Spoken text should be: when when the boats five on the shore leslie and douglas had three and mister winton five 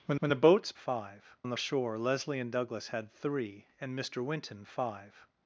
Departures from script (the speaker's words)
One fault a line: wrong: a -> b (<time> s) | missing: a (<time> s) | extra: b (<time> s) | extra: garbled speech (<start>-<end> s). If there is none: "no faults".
no faults